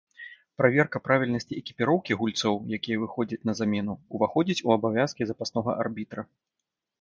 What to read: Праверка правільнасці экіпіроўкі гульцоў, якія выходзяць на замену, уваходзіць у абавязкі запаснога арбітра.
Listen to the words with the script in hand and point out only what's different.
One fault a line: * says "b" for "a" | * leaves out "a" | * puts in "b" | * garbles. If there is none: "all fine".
all fine